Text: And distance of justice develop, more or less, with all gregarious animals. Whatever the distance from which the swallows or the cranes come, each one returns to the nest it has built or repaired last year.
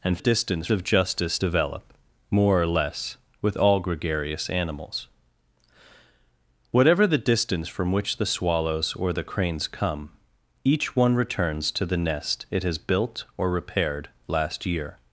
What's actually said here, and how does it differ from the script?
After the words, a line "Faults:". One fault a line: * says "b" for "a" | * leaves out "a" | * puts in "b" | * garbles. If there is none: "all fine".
And distance of justice develop, more or less, with all gregarious animals. Whatever the distance from which the swallows or the cranes come, each one returns to the nest it has built or repaired last year.
Faults:
all fine